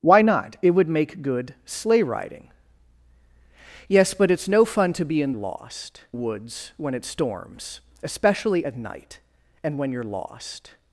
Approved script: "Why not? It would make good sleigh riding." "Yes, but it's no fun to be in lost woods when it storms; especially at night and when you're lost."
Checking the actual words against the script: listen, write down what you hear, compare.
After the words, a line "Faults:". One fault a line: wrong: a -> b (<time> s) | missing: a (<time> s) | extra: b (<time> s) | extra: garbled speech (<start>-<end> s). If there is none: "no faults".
"Why not? It would make good sleigh riding." "Yes, but it's no fun to be in lost woods when it storms; especially at night and when you're lost."
Faults:
no faults